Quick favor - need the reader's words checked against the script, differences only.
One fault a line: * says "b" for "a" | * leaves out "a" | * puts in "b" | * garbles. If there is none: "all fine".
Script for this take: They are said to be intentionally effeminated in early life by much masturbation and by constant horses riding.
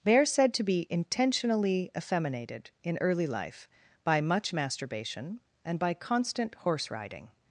* says "horse" for "horses"